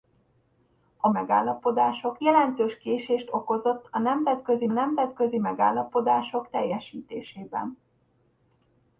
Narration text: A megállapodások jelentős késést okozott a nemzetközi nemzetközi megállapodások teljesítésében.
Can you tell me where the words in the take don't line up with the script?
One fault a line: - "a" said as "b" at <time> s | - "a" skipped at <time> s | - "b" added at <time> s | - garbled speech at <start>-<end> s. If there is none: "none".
none